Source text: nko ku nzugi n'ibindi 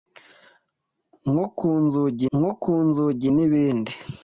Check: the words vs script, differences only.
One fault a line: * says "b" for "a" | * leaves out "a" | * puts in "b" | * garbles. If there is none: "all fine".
* puts in "nko ku nzugi"